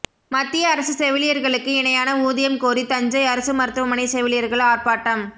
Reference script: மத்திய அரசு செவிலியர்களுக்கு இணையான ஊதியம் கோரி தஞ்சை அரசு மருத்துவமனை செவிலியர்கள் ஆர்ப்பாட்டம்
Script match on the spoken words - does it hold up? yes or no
yes